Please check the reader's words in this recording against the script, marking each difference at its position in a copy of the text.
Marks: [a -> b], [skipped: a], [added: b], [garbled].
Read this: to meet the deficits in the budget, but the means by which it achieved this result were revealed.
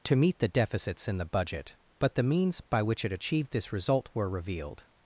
to meet the deficits in the budget, but the means by which it achieved this result were revealed.